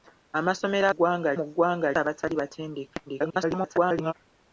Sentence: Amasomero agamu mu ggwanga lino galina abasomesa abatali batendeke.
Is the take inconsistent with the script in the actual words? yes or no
yes